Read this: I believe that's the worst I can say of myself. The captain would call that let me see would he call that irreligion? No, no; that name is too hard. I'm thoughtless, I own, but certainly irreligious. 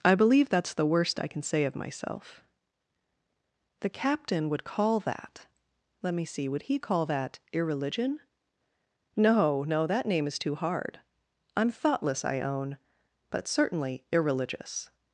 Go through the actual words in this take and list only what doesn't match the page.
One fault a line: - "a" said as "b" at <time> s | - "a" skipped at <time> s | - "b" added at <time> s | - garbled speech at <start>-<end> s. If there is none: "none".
none